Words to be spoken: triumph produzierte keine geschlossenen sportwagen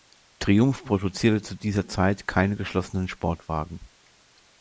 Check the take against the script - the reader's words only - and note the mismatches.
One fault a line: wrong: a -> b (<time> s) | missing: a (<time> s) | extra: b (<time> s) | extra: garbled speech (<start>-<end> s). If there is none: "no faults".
extra: zu dieser zeit (1.4 s)